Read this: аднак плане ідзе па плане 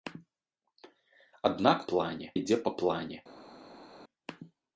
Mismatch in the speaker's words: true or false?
false